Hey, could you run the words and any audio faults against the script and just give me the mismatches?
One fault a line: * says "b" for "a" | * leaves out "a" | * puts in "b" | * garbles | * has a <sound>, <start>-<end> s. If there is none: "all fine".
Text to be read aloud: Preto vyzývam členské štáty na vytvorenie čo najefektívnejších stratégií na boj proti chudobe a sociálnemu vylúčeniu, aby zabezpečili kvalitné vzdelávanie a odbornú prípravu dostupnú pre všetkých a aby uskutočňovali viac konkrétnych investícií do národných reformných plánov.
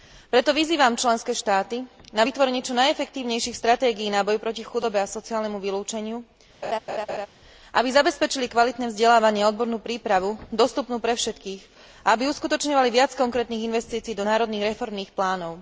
* has a laugh, 6.6-7.3 s